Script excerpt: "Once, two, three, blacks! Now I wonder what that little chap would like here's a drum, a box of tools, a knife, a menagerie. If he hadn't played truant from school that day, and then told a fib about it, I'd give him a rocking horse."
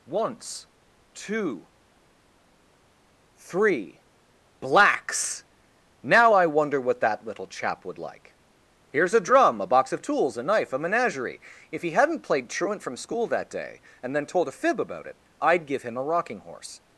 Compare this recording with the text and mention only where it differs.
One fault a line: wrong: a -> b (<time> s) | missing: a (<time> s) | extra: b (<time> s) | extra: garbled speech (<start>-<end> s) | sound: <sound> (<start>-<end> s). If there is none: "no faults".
no faults